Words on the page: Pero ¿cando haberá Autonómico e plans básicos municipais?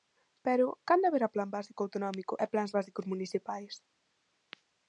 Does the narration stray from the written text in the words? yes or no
yes